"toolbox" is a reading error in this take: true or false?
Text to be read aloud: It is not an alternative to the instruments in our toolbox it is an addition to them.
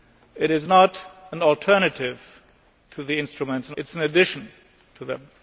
true